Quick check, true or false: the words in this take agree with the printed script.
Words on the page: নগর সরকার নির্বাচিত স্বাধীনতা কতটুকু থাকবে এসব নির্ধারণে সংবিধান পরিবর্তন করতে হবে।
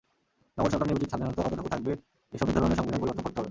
true